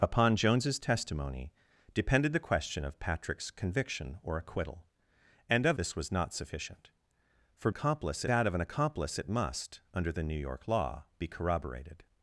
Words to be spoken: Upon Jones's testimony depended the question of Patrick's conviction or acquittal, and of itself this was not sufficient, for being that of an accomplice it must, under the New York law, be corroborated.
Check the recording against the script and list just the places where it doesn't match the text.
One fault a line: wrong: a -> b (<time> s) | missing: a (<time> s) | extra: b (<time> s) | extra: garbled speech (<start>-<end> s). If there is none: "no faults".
missing: itself (5.8 s)
wrong: being -> accomplice (7.7 s)